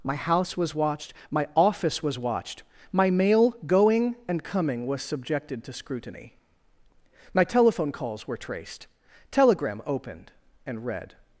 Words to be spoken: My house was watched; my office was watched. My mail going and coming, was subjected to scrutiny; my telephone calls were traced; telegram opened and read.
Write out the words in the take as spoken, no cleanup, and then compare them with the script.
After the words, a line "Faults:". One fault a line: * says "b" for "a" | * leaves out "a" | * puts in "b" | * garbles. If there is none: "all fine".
My house was watched; my office was watched. My mail going and coming, was subjected to scrutiny; my telephone calls were traced; telegram opened and read.
Faults:
all fine